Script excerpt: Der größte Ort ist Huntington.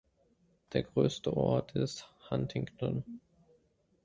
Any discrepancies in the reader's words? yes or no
no